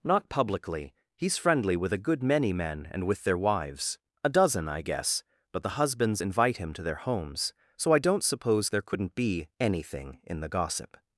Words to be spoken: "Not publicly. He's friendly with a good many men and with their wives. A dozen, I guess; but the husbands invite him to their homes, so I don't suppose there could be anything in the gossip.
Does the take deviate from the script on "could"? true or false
true